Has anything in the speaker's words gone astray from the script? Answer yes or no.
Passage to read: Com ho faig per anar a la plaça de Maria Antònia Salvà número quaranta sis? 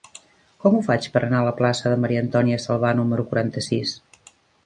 no